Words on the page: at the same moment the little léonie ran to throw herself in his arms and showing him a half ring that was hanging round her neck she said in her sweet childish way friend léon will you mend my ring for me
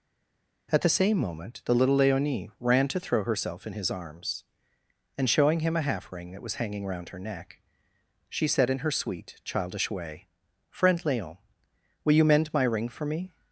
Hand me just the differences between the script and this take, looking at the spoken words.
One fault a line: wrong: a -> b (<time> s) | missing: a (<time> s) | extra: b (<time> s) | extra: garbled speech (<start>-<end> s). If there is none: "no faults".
no faults